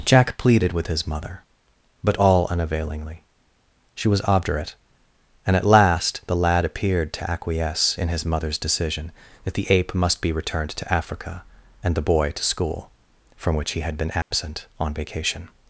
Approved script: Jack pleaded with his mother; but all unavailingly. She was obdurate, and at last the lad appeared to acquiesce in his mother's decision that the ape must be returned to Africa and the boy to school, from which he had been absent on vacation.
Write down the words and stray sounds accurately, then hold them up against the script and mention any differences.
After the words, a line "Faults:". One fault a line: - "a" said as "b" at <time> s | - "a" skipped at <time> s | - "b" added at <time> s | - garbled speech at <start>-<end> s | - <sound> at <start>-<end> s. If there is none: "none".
Jack pleaded with his mother; but all unavailingly. She was obdurate, and at last the lad appeared to acquiesce in his mother's decision that the ape must be returned to Africa and the boy to school, from which he had been absent on vacation.
Faults:
- dropout at 14.2-14.3 s